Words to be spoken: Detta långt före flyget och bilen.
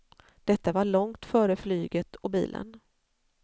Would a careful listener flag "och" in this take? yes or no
no